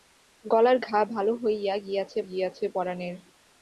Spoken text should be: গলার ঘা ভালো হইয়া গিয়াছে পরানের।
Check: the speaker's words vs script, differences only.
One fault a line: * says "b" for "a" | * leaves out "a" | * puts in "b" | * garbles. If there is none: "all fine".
* puts in "গিয়াছে"